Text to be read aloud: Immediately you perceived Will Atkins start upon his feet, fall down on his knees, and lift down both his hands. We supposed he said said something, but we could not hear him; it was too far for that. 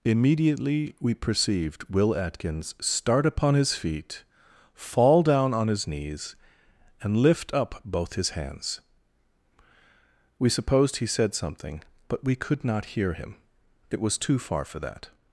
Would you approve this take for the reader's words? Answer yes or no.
no